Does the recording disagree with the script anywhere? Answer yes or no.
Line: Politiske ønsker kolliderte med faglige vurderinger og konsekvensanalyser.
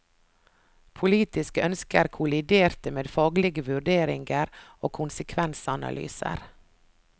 no